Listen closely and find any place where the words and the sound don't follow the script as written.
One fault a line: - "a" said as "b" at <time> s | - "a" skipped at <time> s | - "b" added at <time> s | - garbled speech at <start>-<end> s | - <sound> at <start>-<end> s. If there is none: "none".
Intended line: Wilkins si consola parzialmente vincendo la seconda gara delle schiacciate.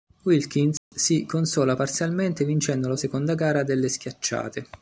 - dropout at 0.8-0.9 s